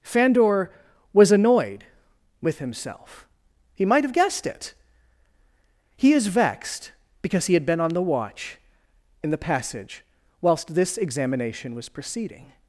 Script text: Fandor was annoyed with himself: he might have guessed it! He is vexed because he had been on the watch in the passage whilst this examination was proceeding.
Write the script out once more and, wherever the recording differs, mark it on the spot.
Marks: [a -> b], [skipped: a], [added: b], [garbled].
Fandor was annoyed with himself: he might have guessed it! He is vexed because he had been on the watch in the passage whilst this examination was proceeding.